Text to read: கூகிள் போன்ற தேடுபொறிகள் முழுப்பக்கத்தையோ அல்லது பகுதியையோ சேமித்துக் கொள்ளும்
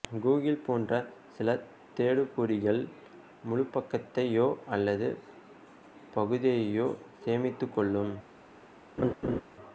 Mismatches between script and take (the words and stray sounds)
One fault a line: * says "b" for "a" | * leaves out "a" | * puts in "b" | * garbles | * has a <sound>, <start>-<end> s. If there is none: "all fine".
* puts in "சில"
* has a laugh, 9.0-9.4 s